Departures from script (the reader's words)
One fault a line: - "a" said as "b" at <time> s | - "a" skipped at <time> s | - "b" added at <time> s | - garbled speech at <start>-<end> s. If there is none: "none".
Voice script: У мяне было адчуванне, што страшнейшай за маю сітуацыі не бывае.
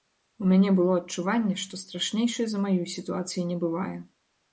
none